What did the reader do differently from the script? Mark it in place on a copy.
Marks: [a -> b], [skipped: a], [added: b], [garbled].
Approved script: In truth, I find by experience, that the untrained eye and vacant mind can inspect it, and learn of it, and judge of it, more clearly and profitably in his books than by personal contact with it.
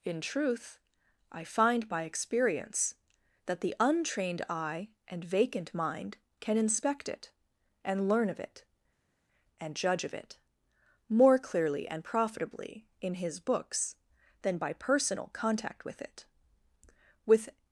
In truth, I find by experience, that the untrained eye and vacant mind can inspect it, and learn of it, and judge of it, more clearly and profitably in his books than by personal contact with it. [added: With]